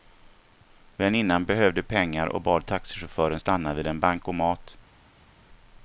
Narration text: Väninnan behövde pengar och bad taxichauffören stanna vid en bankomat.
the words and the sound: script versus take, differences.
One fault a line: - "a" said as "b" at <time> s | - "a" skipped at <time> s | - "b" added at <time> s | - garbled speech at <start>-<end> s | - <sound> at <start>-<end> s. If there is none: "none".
none